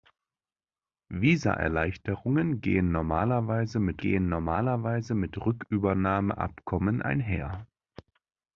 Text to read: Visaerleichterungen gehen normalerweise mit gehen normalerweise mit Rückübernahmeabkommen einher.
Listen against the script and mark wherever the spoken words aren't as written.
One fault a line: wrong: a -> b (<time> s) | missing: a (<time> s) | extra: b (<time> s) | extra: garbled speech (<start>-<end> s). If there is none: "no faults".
no faults